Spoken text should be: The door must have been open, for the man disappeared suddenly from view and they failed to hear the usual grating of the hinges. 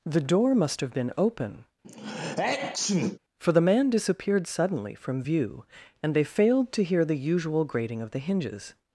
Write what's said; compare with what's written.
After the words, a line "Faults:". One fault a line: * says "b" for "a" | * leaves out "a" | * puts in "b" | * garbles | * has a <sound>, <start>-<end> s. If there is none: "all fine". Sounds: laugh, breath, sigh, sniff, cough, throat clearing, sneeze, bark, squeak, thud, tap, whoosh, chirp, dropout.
The door must have been open, for the man disappeared suddenly from view and they failed to hear the usual grating of the hinges.
Faults:
* has a sneeze, 1.8-3.2 s